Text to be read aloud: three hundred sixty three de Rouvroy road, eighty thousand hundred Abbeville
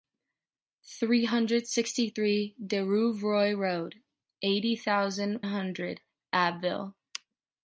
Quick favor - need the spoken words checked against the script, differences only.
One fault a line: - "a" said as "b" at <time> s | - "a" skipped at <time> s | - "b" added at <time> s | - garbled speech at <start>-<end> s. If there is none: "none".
none